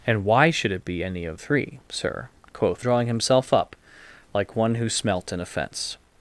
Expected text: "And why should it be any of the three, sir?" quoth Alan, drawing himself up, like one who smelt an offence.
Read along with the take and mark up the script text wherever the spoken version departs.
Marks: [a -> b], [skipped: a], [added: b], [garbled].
"And why should it be any of [skipped: the] three, sir?" quoth [skipped: Alan,] drawing himself up, like one who smelt an offence.